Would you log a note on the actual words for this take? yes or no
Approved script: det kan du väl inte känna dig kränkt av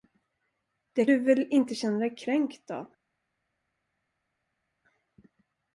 yes